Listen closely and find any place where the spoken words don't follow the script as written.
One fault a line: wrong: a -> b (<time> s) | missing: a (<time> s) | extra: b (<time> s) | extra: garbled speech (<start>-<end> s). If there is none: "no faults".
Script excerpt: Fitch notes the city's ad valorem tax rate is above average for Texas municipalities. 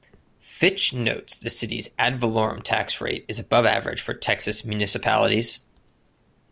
no faults